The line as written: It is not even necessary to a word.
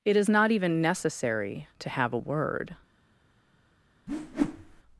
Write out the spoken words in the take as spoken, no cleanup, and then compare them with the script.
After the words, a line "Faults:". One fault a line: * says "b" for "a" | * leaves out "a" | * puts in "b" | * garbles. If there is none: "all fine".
It is not even necessary to have a word.
Faults:
* puts in "have"